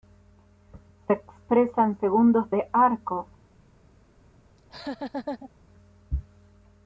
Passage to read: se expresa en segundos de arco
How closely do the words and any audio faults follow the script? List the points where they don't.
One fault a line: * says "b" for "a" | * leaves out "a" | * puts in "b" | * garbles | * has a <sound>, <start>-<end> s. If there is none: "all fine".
* has a laugh, 4.6-5.5 s